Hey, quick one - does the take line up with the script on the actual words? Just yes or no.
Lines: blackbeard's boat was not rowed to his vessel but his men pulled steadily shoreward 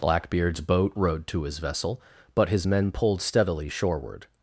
no